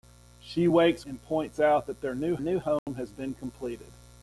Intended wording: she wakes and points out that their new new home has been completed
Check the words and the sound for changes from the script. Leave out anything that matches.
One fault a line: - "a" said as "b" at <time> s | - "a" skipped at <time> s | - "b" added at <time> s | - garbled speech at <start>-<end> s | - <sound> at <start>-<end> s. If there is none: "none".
- dropout at 2.8-2.9 s